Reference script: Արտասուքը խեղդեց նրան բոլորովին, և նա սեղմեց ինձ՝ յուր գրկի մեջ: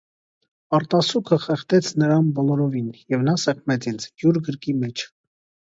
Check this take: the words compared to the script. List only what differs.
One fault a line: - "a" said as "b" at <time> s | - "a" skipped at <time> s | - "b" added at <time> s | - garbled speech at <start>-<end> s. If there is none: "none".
none